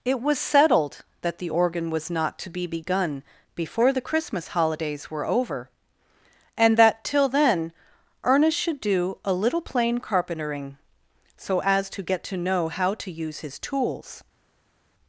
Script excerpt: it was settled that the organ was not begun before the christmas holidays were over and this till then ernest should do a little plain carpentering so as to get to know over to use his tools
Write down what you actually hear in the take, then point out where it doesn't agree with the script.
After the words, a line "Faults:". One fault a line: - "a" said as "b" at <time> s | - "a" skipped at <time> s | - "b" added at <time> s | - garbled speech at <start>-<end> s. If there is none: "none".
it was settled that the organ was not to be begun before the christmas holidays were over and that till then ernest should do a little plain carpentering so as to get to know how to use his tools
Faults:
- "to be" added at 2.4 s
- "this" said as "that" at 6.8 s
- "over" said as "how" at 12.7 s